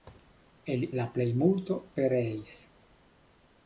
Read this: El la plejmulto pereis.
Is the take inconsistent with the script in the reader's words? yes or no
no